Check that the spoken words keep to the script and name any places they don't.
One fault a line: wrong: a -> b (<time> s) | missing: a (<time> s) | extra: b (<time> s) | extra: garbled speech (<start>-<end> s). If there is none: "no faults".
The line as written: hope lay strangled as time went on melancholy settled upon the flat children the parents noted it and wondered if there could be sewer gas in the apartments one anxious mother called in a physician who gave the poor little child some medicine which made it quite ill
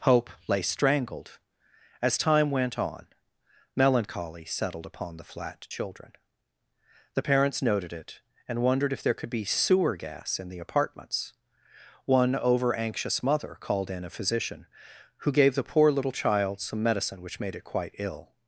extra: over (12.4 s)